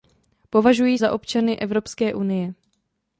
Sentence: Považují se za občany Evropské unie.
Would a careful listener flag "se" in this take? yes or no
yes